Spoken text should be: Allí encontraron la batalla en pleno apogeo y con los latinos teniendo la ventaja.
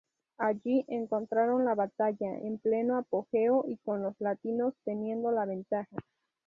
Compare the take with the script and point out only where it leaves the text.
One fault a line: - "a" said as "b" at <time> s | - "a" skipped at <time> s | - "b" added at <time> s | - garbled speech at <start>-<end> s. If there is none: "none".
none